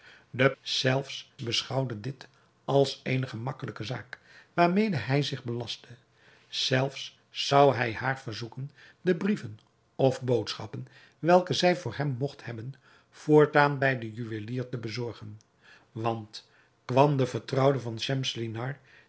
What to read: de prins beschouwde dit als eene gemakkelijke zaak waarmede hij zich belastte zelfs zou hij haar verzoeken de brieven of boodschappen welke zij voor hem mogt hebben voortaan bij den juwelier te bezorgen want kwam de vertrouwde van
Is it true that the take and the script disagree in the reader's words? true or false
true